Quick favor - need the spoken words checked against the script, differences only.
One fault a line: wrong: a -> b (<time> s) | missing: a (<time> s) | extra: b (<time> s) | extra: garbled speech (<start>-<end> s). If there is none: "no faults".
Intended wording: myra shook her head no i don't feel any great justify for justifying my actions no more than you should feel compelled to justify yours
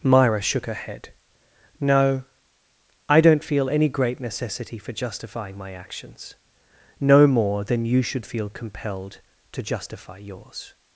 wrong: justify -> necessity (4.2 s)